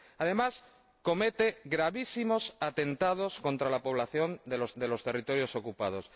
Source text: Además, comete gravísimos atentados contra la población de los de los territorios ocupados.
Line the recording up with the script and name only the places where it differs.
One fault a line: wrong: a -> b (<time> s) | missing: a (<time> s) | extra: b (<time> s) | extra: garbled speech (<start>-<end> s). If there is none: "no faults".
no faults